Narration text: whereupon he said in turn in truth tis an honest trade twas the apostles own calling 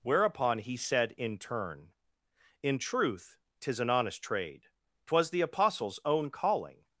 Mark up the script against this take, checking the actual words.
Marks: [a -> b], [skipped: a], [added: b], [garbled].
whereupon he said in turn in truth tis an honest trade twas the apostles own calling